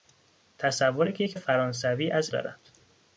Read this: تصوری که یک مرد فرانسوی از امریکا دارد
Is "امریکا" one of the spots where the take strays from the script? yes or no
yes